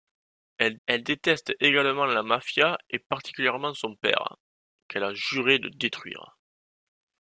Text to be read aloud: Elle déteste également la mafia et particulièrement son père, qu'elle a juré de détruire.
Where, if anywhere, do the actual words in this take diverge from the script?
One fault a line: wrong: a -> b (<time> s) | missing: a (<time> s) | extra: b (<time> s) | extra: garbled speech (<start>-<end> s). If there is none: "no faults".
extra: elle (0.9 s)